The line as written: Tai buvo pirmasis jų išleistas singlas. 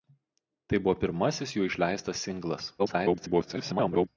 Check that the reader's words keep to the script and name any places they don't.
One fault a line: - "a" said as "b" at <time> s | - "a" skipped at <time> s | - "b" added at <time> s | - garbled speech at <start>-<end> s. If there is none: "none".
- garbled speech at 2.8-4.1 s